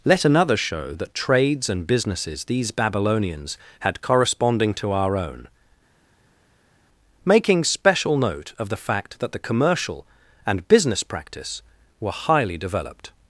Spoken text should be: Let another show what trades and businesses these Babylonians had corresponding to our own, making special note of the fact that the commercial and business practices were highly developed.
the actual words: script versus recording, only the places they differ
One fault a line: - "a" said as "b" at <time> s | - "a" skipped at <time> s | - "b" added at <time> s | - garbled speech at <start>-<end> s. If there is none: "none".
- "what" said as "that" at 0.9 s
- "practices" said as "practice" at 11.0 s